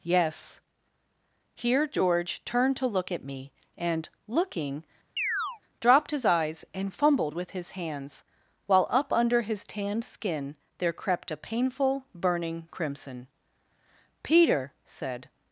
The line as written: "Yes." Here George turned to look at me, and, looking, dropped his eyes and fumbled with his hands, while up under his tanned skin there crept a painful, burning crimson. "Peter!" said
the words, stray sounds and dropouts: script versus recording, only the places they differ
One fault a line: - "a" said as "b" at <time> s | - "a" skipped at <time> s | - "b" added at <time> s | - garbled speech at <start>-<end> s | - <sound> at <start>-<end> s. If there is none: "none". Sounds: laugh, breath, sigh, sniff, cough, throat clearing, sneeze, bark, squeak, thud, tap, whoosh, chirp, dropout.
- chirp at 5.2-5.6 s